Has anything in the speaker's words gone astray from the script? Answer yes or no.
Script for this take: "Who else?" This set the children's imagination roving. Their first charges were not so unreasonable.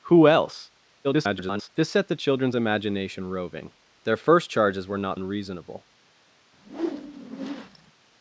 yes